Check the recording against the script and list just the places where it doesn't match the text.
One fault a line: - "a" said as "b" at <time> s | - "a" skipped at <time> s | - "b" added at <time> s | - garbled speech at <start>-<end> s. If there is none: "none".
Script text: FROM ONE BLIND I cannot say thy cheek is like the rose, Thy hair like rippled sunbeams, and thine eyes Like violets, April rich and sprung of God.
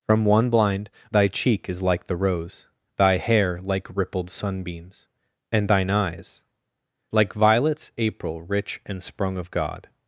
- "I cannot say" skipped at 0.9 s